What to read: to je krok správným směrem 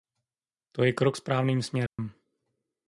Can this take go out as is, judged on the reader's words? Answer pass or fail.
pass